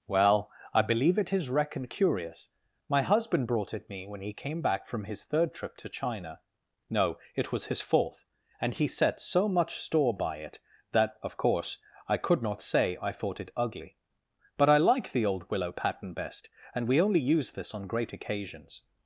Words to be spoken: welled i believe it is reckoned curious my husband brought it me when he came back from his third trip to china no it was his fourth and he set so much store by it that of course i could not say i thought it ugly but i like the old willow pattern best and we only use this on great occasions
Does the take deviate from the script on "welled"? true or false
true